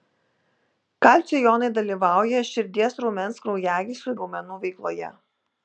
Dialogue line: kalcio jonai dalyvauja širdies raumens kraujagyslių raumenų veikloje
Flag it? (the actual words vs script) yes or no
no